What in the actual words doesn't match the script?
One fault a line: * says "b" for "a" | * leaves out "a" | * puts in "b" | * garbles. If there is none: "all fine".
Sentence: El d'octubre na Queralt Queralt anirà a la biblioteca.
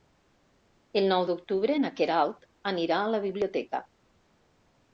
* puts in "nou"
* leaves out "Queralt"